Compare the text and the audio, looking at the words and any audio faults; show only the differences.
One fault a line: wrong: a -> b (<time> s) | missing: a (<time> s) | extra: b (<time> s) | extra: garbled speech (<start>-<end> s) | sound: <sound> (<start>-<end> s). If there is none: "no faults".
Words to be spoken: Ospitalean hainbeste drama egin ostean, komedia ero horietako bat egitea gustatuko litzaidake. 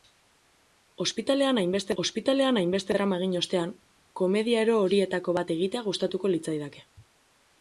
extra: ospitalean hainbeste (2.0 s)